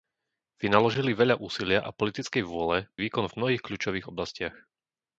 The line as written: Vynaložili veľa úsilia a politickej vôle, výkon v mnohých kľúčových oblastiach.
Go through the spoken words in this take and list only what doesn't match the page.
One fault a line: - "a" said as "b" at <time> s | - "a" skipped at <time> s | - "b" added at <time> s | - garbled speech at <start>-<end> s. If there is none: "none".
none